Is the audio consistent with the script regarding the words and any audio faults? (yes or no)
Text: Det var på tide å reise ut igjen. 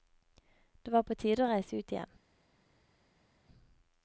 yes